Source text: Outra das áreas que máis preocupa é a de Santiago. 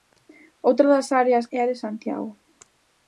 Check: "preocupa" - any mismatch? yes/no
yes